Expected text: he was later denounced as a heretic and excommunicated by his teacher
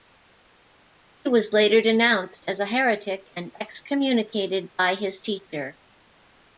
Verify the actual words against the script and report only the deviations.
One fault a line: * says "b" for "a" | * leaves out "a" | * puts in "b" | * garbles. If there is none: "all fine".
all fine